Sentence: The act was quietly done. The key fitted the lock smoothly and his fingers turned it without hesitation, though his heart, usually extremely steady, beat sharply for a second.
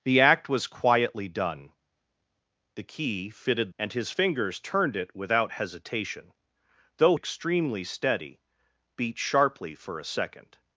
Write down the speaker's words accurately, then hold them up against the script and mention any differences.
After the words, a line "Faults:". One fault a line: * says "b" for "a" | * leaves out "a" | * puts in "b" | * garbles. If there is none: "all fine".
The act was quietly done. The key fitted and his fingers turned it without hesitation, though extremely steady, beat sharply for a second.
Faults:
* leaves out "the lock smoothly"
* leaves out "his heart usually"